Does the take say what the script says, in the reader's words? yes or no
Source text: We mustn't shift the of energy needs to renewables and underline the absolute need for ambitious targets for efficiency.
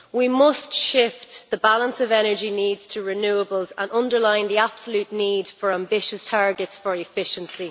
no